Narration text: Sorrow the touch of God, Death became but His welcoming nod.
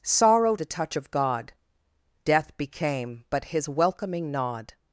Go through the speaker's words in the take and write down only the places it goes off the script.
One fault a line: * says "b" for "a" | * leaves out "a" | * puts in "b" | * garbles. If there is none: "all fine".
all fine